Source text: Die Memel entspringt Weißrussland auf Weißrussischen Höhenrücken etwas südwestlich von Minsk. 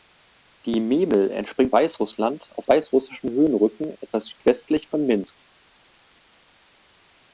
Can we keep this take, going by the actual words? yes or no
yes